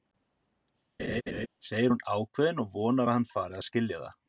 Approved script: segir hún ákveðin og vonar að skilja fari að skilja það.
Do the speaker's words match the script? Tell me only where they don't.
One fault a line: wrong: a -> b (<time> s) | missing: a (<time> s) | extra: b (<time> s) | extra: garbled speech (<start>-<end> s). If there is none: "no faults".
wrong: skilja -> hann (3.2 s)